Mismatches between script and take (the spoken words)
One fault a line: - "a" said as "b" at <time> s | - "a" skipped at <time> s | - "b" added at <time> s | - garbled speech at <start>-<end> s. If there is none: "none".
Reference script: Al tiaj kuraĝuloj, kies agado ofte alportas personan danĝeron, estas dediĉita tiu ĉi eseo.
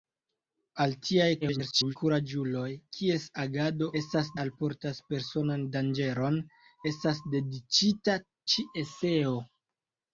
- garbled speech at 1.4-2.0 s
- "ofte" said as "estas" at 4.0 s
- "tiu" skipped at 8.2 s